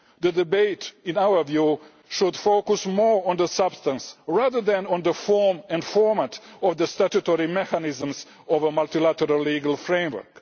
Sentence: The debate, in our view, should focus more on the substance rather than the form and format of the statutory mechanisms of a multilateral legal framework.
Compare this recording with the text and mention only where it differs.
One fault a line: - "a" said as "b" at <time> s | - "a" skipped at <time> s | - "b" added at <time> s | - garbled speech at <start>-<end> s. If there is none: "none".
- "on" added at 4.9 s